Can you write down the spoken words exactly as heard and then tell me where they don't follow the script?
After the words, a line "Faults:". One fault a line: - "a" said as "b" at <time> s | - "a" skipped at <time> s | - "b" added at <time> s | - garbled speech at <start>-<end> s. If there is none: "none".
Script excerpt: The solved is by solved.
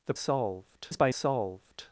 The solved is by solved.
Faults:
none